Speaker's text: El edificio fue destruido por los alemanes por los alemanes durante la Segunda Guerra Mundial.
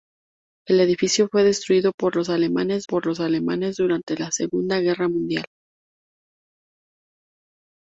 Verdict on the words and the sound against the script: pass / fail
pass